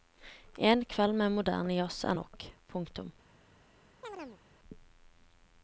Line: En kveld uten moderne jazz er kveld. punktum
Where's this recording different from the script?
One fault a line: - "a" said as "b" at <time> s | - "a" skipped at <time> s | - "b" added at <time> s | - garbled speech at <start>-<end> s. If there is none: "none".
- "uten" said as "med" at 1.2 s
- "kveld" said as "nok" at 2.1 s